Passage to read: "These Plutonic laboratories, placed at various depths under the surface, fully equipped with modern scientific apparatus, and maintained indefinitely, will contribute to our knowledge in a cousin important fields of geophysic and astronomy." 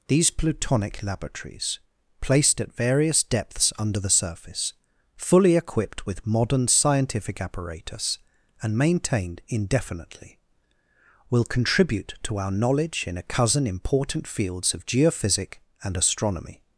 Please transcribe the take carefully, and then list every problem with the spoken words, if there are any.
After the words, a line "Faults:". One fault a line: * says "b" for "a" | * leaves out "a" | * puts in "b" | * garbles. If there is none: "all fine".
"These Plutonic laboratories, placed at various depths under the surface, fully equipped with modern scientific apparatus, and maintained indefinitely, will contribute to our knowledge in a cousin important fields of geophysic and astronomy."
Faults:
all fine